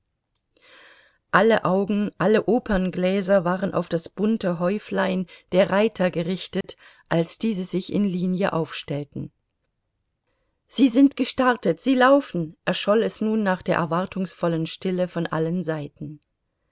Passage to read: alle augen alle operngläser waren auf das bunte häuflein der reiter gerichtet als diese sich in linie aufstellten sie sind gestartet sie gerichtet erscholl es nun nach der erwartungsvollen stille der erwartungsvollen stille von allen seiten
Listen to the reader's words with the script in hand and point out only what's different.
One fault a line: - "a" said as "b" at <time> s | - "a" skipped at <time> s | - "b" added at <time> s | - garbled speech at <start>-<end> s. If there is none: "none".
- "gerichtet" said as "laufen" at 11.9 s
- "der erwartungsvollen stille" skipped at 15.1 s